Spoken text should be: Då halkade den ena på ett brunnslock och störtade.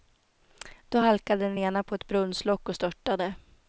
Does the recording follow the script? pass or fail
pass